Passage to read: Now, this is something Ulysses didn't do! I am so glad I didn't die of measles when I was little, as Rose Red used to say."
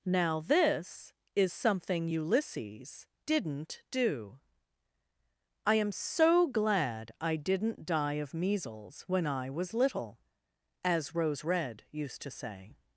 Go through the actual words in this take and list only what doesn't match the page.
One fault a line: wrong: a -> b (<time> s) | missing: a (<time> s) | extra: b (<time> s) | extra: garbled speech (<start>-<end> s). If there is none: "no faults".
no faults